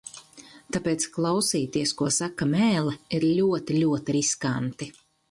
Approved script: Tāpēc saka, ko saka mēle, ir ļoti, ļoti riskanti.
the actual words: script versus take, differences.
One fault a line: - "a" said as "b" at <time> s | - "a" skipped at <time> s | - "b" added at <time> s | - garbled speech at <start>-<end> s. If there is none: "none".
- "saka" said as "klausīties" at 1.2 s